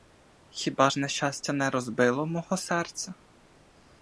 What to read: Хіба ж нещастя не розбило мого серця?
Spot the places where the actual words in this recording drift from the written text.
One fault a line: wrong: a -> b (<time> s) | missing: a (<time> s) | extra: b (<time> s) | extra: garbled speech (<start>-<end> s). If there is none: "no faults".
no faults